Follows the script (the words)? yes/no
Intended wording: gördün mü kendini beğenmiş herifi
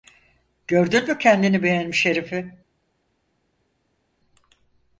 yes